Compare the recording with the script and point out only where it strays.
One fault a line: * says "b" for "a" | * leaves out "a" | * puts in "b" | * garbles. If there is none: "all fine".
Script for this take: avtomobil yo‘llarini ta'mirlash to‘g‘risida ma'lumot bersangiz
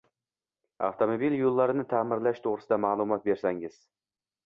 all fine